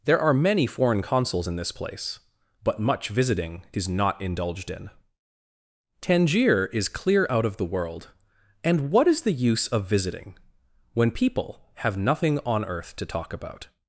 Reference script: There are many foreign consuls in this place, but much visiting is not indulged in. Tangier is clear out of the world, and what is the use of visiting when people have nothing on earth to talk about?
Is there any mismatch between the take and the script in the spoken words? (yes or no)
no